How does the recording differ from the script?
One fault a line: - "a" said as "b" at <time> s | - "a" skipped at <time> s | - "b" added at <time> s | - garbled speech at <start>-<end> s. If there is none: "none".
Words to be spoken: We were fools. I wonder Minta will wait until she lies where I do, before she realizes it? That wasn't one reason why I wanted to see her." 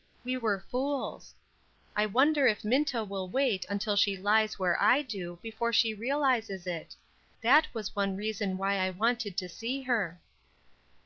- "if" added at 2.5 s
- "wasn't" said as "was" at 7.7 s